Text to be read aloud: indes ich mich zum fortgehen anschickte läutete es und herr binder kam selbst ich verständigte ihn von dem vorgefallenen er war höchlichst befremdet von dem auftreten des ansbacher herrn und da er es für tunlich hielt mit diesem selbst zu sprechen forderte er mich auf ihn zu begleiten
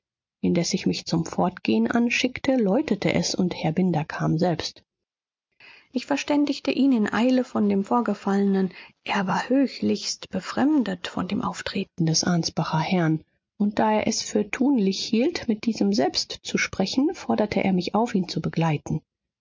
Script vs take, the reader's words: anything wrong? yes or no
yes